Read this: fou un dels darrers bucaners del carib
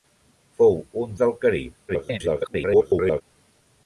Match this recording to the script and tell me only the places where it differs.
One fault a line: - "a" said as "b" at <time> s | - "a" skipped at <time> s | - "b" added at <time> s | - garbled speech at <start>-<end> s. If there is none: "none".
- "dels darrers bucaners" skipped at 1.1 s
- garbled speech at 1.9-3.2 s